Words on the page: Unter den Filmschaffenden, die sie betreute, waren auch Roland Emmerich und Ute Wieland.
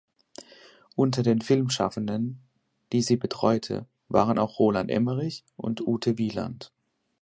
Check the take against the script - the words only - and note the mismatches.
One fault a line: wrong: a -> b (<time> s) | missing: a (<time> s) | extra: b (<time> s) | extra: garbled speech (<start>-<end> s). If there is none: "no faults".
no faults